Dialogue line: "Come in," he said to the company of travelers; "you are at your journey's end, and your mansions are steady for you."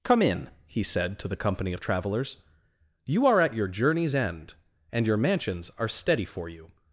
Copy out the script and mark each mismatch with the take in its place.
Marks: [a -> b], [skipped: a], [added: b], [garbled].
"Come in," he said to the company of travelers; "you are at your journey's end, and your mansions are steady for you."